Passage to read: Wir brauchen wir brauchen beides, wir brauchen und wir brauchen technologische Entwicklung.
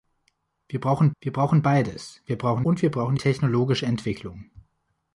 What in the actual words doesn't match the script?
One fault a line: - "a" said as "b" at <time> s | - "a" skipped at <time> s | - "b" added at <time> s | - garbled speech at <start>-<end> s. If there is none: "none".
none